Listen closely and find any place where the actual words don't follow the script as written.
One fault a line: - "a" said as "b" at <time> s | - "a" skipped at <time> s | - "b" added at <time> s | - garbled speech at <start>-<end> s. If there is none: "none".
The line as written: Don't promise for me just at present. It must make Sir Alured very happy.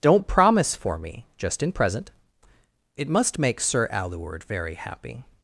- "at" said as "in" at 1.6 s